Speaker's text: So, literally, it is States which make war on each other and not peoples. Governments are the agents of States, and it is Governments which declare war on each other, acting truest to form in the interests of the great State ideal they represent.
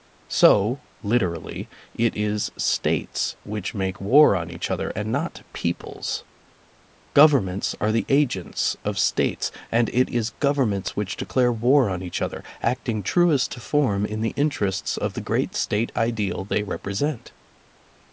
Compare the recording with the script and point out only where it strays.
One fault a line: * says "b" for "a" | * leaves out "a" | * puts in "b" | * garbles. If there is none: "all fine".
all fine